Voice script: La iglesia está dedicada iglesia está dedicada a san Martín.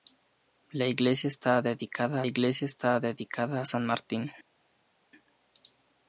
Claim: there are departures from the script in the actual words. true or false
false